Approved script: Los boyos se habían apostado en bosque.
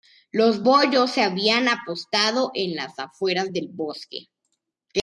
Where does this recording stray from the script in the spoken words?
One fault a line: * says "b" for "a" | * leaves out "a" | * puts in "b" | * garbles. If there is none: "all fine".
* puts in "las afueras del"